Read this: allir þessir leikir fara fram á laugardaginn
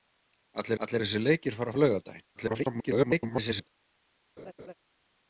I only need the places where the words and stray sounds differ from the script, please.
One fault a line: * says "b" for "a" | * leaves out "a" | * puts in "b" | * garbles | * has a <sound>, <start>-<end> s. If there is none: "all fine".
* puts in "allir"
* leaves out "fram"
* garbles
* has a laugh, 4.4-4.7 s